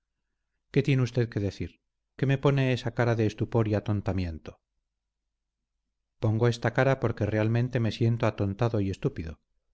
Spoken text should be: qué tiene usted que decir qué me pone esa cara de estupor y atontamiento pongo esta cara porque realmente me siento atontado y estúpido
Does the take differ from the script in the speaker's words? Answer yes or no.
no